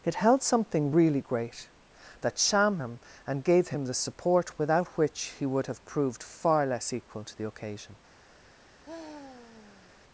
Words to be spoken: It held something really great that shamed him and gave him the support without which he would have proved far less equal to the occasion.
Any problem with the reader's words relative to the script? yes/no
yes